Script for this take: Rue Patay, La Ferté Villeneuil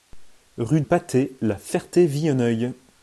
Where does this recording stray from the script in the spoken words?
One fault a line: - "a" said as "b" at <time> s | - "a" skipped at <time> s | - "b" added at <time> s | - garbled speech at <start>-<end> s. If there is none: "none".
none